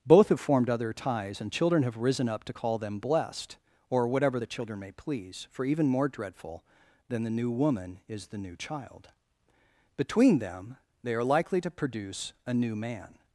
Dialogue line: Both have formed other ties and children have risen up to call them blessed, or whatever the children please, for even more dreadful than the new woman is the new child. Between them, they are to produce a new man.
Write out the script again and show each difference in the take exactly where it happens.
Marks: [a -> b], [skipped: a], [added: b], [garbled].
Both have formed other ties and children have risen up to call them blessed, or whatever the children [added: may] please, for even more dreadful than the new woman is the new child. Between them, they are [added: likely] to produce a new man.